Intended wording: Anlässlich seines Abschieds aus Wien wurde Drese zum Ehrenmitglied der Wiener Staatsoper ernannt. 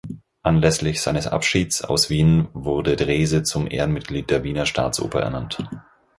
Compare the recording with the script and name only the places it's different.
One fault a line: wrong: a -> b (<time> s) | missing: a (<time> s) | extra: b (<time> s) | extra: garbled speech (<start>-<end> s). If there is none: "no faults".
no faults